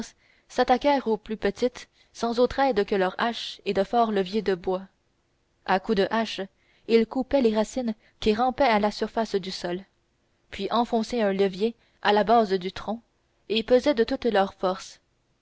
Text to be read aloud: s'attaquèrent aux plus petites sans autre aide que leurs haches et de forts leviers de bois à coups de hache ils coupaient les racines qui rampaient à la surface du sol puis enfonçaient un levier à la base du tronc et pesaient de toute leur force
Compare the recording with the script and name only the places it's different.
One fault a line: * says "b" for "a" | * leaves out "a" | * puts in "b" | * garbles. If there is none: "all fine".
all fine